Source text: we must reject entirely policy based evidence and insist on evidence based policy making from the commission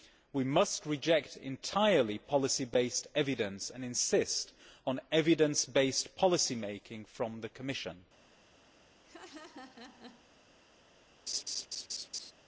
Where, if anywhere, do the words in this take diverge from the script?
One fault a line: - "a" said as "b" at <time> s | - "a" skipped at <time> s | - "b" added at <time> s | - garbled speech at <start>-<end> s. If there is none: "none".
none